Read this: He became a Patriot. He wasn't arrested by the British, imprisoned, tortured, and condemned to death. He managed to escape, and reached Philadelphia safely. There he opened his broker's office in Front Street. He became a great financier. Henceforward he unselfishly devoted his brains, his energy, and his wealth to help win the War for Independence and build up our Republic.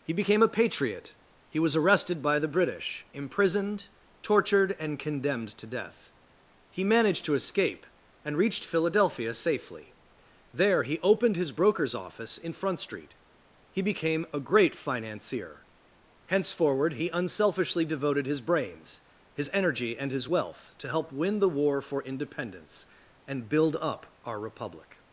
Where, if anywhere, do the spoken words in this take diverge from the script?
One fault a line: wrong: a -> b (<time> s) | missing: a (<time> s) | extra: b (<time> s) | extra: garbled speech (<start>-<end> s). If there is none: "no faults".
wrong: wasn't -> was (1.6 s)